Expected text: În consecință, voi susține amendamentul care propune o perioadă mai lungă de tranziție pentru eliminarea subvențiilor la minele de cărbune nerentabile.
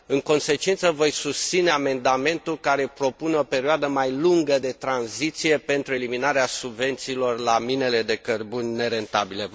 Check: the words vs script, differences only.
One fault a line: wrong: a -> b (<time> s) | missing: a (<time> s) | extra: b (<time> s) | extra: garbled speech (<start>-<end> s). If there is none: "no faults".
no faults